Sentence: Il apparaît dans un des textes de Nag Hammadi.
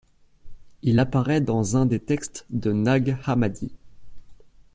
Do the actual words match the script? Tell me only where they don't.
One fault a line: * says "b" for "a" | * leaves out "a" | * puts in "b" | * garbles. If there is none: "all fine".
all fine